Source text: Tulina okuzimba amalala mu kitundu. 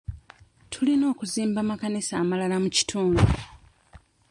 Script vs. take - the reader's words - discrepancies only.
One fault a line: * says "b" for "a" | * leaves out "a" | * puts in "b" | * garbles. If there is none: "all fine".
* puts in "amakanisa"